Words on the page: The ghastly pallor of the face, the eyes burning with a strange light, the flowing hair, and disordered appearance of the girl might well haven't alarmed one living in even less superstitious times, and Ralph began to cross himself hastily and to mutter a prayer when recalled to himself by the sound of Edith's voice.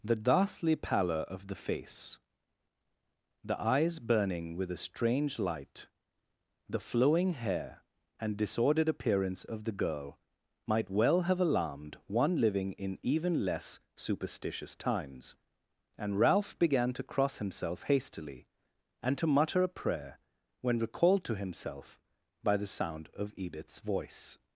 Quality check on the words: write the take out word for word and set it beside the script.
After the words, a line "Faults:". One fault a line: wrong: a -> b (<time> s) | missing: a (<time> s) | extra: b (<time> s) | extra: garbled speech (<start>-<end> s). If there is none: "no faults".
The ghastly pallor of the face, the eyes burning with a strange light, the flowing hair, and disordered appearance of the girl might well have alarmed one living in even less superstitious times, and Ralph began to cross himself hastily and to mutter a prayer when recalled to himself by the sound of Edith's voice.
Faults:
wrong: haven't -> have (11.2 s)